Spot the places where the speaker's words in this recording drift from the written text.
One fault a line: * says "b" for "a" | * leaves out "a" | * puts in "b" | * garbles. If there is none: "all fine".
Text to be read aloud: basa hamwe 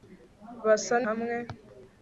all fine